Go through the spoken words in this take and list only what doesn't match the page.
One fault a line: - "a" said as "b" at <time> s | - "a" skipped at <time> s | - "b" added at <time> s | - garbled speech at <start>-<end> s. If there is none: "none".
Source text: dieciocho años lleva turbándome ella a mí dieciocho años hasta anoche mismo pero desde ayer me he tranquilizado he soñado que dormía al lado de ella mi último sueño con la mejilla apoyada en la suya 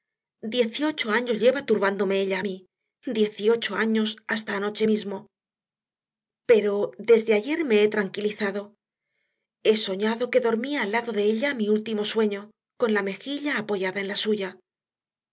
none